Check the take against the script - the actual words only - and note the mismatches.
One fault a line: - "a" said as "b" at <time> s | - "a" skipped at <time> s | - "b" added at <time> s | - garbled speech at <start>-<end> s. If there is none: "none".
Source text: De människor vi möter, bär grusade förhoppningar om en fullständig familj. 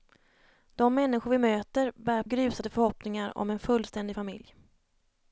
none